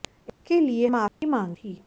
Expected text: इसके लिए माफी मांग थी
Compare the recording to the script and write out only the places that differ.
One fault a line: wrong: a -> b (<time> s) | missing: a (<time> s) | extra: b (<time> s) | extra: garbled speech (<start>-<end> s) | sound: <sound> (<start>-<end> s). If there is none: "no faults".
sound: dropout (1.1-1.2 s)